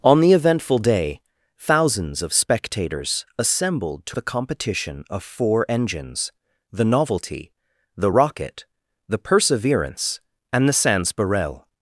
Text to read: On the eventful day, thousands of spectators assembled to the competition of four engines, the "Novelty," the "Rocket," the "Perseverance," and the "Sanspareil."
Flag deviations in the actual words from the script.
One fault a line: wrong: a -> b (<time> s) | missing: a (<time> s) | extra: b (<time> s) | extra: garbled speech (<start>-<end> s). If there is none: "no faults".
no faults